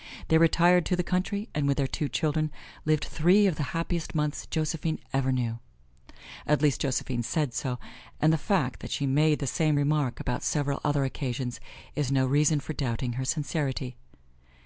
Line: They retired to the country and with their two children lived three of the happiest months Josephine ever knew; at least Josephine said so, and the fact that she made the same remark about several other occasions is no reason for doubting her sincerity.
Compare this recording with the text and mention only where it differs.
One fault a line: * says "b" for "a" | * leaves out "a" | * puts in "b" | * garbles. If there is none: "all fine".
all fine